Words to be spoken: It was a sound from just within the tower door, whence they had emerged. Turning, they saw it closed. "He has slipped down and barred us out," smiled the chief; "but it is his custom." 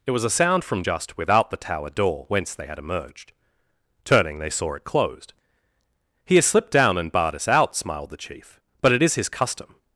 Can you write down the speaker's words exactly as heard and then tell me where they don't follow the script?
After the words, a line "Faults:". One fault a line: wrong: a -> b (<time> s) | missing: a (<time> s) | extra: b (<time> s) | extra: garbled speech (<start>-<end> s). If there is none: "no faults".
It was a sound from just without the tower door, whence they had emerged. Turning, they saw it closed. "He has slipped down and barred us out," smiled the chief; "but it is his custom."
Faults:
wrong: within -> without (1.2 s)